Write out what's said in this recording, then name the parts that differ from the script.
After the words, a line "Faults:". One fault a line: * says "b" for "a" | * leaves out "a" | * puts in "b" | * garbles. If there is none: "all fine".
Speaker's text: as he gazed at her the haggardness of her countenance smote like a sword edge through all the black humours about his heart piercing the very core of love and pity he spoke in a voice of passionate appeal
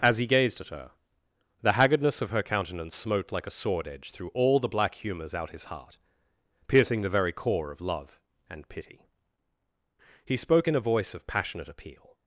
as he gazed at her the haggardness of her countenance smote like a sword edge through all the black humours out his heart piercing the very core of love and pity he spoke in a voice of passionate appeal
Faults:
* says "out" for "about"